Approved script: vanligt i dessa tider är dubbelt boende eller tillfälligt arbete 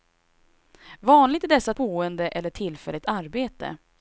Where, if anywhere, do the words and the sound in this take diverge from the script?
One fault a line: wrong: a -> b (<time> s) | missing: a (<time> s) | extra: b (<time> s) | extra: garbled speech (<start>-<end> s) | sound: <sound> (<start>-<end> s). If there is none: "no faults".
missing: tider är dubbelt (1.7 s)